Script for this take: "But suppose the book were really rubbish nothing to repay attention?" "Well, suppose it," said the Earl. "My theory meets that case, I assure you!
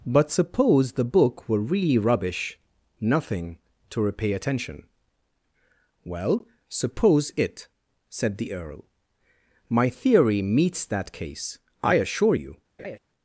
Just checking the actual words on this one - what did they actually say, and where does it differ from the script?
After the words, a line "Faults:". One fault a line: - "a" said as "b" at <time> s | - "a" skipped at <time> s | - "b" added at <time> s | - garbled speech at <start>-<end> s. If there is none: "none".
"But suppose the book were really rubbish nothing to repay attention?" "Well, suppose it," said the Earl. "My theory meets that case, I assure you!
Faults:
none